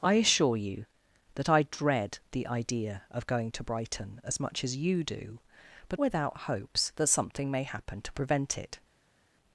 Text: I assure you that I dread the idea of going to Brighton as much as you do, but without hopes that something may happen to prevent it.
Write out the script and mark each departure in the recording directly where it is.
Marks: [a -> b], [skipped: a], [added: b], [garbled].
I assure you that I dread the idea of going to Brighton as much as you do, but without hopes that something may happen to prevent it.